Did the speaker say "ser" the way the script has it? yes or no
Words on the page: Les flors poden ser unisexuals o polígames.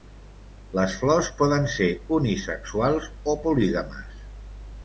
yes